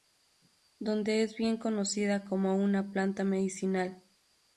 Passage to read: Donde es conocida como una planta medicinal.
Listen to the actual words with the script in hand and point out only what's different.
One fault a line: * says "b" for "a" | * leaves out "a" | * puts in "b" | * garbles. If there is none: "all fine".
* puts in "bien"